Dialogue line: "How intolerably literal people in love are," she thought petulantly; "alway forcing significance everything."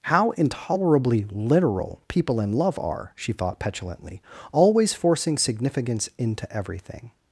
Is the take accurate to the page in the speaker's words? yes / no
no